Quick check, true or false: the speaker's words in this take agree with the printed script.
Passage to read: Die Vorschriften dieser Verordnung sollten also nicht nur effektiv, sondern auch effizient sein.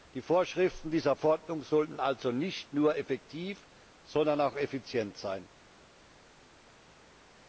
true